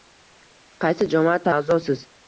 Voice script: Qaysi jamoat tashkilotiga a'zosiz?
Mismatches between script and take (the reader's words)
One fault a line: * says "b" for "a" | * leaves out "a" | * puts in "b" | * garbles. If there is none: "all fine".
* leaves out "tashkilotiga"